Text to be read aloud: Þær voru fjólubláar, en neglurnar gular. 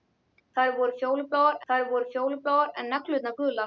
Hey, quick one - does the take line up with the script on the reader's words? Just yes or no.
no